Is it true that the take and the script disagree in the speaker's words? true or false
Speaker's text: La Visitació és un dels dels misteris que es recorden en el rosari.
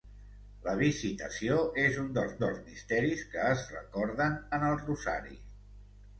false